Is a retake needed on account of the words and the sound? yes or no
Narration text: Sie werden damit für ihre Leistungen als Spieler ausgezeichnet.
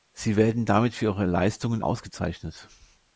yes